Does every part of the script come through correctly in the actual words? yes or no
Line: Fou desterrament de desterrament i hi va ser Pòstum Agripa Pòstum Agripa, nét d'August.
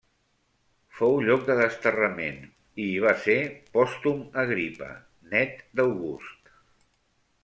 no